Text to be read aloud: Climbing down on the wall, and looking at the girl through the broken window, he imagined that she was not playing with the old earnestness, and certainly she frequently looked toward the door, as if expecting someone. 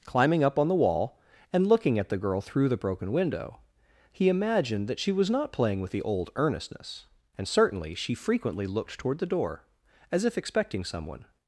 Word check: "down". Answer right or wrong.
wrong